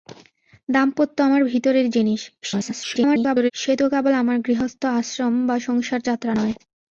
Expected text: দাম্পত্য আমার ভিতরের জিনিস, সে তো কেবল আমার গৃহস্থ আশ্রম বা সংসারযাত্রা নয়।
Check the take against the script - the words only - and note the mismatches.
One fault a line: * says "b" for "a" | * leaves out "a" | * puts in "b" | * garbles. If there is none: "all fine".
* garbles